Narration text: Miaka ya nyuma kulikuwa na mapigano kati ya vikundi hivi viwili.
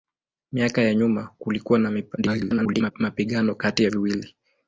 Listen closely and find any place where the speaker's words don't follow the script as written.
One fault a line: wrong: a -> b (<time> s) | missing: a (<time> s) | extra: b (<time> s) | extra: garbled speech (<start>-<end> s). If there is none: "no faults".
extra: garbled speech (2.2-2.9 s)
missing: vikundi hivi (3.9 s)